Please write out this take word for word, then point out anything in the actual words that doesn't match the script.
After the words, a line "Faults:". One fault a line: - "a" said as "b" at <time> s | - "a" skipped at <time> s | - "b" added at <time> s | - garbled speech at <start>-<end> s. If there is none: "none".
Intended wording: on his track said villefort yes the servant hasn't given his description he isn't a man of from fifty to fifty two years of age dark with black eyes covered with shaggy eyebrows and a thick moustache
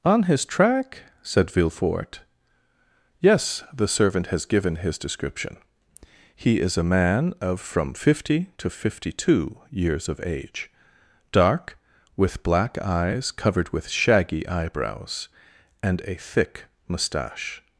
on his track said villefort yes the servant has given his description he is a man of from fifty to fifty two years of age dark with black eyes covered with shaggy eyebrows and a thick moustache
Faults:
- "hasn't" said as "has" at 4.3 s
- "isn't" said as "is" at 6.6 s